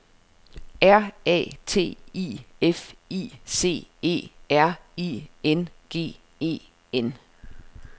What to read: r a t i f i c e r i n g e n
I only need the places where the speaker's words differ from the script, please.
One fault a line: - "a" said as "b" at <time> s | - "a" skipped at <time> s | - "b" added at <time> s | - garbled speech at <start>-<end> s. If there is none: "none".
none